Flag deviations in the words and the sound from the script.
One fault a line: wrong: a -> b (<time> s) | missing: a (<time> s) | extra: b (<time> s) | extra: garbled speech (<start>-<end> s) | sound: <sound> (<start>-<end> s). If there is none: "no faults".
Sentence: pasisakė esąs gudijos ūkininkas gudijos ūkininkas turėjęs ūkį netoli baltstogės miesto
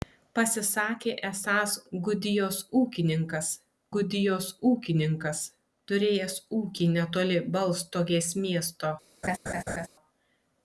sound: laugh (9.2-9.9 s)